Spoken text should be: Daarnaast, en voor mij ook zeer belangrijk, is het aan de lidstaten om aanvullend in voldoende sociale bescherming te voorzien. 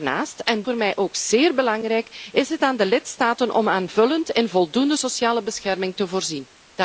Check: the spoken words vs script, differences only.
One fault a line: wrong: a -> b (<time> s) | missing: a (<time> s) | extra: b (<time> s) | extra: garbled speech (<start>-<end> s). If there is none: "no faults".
no faults